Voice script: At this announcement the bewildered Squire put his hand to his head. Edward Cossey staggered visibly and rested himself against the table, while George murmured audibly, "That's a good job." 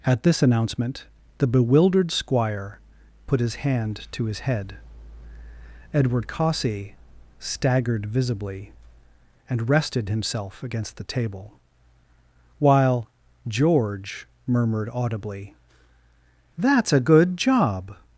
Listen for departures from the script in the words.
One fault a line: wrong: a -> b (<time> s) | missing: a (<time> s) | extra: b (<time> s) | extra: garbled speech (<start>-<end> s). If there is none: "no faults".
no faults